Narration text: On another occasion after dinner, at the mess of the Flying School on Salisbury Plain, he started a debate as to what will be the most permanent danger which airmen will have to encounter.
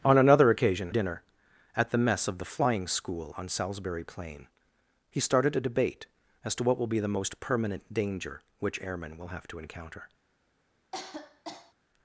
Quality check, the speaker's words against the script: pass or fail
fail